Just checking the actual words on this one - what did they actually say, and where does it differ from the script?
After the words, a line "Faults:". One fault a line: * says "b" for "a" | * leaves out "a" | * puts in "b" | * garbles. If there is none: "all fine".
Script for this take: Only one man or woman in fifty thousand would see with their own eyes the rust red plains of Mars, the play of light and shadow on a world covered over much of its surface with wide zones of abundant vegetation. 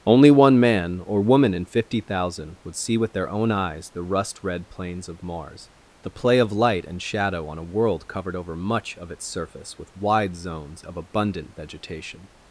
Only one man or woman in fifty thousand would see with their own eyes the rust red plains of Mars, the play of light and shadow on a world covered over much of its surface with wide zones of abundant vegetation.
Faults:
all fine